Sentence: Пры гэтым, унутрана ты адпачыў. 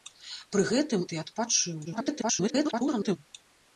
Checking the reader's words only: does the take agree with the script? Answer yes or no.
no